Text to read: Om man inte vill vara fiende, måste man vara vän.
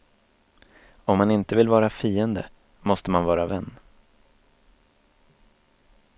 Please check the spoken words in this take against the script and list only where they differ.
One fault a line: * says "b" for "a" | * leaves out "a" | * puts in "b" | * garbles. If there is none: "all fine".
all fine